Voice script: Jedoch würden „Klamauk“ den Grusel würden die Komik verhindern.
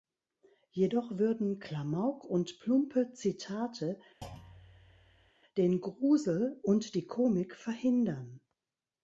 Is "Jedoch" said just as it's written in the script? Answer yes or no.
yes